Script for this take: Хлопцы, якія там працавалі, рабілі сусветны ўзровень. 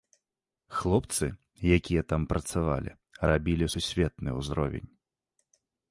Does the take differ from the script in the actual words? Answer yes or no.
no